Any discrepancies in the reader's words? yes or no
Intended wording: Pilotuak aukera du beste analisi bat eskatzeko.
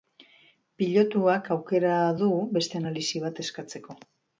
no